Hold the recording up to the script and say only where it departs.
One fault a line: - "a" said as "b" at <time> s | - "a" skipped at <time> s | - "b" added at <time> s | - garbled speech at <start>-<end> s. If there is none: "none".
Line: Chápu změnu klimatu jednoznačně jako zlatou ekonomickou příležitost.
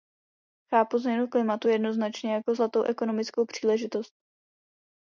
none